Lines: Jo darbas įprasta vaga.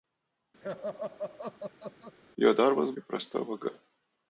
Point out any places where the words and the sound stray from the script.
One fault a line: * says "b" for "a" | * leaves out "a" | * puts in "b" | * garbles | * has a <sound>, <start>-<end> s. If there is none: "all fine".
* has a laugh, 0.6-2.2 s